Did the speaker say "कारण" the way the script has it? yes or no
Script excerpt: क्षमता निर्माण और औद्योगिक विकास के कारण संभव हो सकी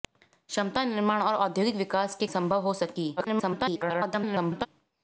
no